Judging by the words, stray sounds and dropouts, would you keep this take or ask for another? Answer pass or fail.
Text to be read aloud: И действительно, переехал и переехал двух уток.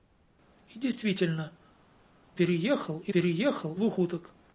pass